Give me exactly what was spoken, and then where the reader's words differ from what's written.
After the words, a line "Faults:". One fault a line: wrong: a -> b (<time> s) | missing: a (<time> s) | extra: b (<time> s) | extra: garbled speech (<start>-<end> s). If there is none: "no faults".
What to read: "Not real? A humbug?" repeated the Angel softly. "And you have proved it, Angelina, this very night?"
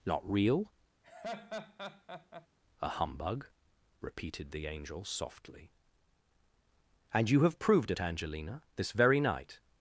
"Not real? A humbug?" repeated the Angel softly. "And you have proved it, Angelina, this very night?"
Faults:
no faults